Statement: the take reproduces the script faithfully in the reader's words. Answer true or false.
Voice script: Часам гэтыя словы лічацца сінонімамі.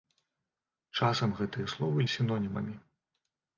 false